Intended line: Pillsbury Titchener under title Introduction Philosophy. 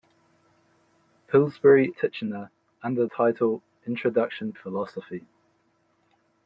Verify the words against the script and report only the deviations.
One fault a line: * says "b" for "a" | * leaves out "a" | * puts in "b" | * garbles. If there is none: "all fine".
all fine